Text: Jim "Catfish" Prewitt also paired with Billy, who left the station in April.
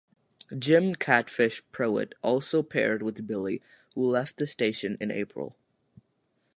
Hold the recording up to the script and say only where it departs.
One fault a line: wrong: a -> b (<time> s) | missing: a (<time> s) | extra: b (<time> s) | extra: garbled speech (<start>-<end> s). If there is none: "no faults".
no faults